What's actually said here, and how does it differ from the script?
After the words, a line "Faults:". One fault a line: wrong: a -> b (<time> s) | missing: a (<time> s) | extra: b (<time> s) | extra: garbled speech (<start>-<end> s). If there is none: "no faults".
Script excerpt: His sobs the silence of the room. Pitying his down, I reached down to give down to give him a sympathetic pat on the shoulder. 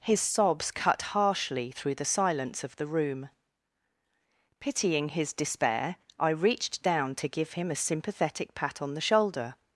His sobs cut harshly through the silence of the room. Pitying his despair, I reached down to give him a sympathetic pat on the shoulder.
Faults:
extra: cut harshly through (0.7 s)
wrong: down -> despair (5.3 s)
missing: down to give (7.5 s)